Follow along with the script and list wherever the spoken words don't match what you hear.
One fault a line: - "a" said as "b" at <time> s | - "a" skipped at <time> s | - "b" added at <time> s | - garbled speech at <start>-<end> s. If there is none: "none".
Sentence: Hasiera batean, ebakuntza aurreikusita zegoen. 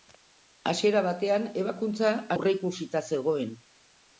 none